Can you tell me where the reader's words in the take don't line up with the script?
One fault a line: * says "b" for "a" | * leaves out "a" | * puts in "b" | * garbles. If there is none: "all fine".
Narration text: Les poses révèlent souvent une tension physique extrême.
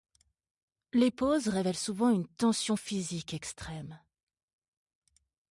all fine